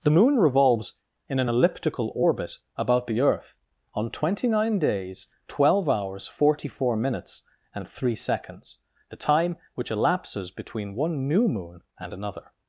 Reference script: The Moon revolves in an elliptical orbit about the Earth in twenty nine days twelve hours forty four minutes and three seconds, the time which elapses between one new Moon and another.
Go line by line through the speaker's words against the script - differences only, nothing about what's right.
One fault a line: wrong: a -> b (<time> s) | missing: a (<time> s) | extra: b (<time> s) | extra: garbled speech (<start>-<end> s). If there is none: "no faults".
wrong: in -> on (3.9 s)